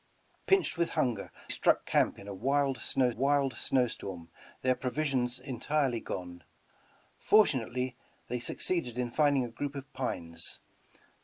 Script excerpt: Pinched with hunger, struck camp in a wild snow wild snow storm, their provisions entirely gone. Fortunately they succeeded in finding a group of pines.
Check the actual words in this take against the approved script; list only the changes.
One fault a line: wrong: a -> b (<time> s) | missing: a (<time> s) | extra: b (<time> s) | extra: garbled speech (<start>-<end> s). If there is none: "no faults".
no faults